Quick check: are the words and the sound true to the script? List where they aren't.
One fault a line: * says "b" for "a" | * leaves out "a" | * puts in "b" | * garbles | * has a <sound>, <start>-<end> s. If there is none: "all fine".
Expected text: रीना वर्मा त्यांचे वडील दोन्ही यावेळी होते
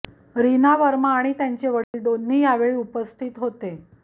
* puts in "आणि"
* has a dropout, 1.8-1.9 s
* puts in "उपस्थित"